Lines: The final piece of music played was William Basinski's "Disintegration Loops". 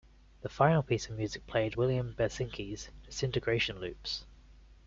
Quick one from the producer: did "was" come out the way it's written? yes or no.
no